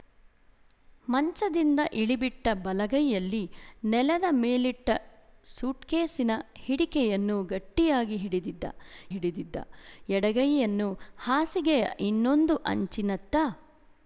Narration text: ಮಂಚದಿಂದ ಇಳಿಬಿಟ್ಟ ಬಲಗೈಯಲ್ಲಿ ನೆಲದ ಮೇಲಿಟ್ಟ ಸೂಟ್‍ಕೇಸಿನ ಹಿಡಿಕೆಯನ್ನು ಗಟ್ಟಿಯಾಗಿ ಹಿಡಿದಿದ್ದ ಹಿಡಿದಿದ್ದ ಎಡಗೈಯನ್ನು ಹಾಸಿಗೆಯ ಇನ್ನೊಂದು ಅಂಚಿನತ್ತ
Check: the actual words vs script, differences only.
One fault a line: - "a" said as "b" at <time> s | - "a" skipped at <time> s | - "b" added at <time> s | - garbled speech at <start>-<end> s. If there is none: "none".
none